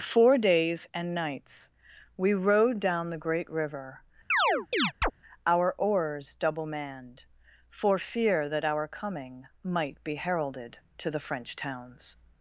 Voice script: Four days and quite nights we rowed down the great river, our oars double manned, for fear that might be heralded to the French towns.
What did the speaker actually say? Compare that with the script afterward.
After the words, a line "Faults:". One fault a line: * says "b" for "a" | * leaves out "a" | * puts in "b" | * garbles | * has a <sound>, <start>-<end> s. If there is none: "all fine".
Four days and nights we rowed down the great river, our oars double manned, for fear that our coming might be heralded to the French towns.
Faults:
* leaves out "quite"
* has a chirp, 4.3-5.1 s
* puts in "our coming"